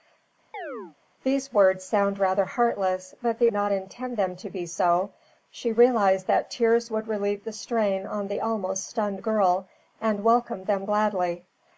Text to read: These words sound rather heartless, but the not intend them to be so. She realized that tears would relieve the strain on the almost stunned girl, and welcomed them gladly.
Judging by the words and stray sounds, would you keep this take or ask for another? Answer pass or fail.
fail